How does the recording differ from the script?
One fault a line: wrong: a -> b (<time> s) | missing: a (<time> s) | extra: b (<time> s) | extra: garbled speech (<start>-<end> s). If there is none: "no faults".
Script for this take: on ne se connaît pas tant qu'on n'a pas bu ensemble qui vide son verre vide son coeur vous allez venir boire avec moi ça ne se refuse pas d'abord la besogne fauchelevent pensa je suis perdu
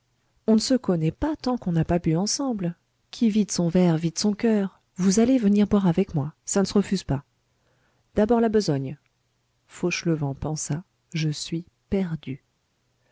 no faults